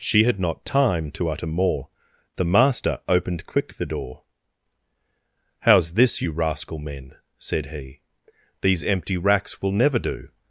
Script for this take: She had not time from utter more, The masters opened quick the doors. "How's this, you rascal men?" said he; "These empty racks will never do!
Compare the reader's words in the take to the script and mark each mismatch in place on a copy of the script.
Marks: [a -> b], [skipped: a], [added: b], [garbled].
She had not time [from -> to] utter more, The [masters -> master] opened quick the [doors. -> door] "How's this, you rascal men?" said he; "These empty racks will never do!